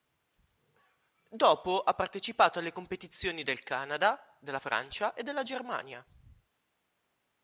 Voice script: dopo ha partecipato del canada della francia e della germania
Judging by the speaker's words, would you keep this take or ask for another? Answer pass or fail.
fail